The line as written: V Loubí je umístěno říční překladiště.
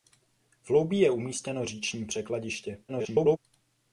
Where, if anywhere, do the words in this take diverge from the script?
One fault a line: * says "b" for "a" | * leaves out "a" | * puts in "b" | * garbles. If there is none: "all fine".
* garbles